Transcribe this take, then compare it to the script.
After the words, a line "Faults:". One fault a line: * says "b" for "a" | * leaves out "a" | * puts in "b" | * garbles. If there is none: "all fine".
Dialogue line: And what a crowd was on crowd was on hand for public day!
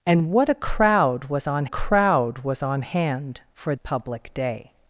And what a crowd was on crowd was on hand for public day!
Faults:
all fine